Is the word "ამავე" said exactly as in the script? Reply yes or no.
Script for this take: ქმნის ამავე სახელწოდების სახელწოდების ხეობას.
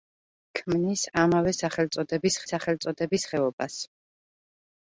yes